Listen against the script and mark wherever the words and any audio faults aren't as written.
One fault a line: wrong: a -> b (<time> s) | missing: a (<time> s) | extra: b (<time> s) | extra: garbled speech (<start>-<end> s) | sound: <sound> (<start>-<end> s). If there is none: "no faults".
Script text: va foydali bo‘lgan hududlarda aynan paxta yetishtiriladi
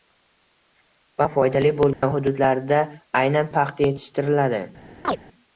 sound: dropout (1.9-2.0 s)
sound: chirp (5.0-5.2 s)